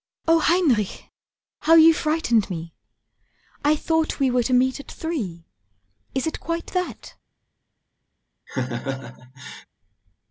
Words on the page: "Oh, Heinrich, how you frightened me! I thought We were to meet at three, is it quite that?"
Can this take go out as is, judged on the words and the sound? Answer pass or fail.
fail